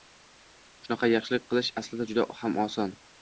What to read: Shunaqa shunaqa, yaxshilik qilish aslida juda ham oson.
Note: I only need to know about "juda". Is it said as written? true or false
true